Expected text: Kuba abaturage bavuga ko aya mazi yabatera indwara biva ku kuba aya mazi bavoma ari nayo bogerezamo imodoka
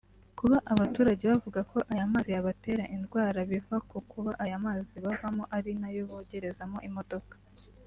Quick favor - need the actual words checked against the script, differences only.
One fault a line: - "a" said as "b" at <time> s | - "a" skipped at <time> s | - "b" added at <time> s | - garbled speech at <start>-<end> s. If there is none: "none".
none